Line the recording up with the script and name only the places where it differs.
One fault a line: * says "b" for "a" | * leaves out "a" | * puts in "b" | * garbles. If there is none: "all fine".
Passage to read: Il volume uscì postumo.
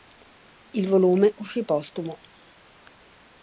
all fine